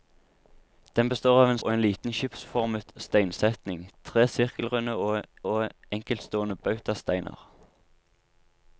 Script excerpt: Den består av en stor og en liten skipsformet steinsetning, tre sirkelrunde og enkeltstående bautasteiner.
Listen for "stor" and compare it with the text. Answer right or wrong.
wrong